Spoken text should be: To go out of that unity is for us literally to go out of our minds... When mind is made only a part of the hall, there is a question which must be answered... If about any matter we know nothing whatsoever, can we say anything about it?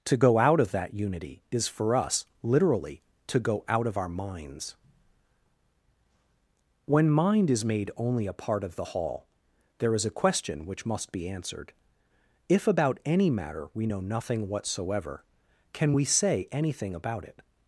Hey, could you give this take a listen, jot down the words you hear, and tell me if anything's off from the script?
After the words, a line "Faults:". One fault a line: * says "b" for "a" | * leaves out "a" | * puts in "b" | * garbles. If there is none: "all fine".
To go out of that unity is for us literally to go out of our minds... When mind is made only a part of the hall, there is a question which must be answered... If about any matter we know nothing whatsoever, can we say anything about it?
Faults:
all fine